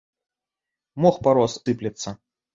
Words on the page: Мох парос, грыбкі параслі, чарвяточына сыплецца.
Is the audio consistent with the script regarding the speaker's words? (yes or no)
no